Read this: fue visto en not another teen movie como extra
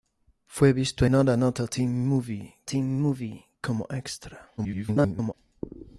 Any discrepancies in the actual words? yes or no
yes